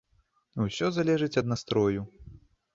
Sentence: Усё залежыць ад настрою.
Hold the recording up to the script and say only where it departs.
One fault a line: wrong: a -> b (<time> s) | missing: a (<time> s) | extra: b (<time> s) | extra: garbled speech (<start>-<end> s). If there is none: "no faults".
no faults